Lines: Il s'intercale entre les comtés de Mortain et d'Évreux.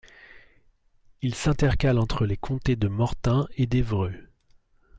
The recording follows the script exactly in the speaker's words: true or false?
true